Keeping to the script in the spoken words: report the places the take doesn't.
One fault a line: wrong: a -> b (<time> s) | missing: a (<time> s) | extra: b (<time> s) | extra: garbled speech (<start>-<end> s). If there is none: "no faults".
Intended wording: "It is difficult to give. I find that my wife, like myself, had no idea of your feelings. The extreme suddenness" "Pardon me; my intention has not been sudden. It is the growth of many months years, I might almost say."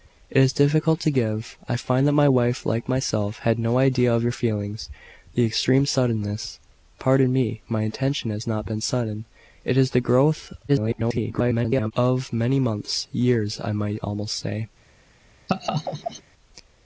extra: garbled speech (10.7-11.9 s)